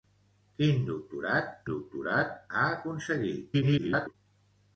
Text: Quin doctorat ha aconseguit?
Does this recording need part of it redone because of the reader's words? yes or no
yes